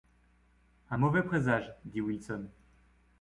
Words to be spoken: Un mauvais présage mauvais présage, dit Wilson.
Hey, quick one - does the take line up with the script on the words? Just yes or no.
no